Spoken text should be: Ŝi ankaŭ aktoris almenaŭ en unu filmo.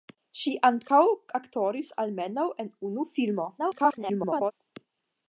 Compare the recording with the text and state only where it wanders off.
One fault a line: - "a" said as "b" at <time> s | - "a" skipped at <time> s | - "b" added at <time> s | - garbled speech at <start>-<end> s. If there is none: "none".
- garbled speech at 3.6-4.5 s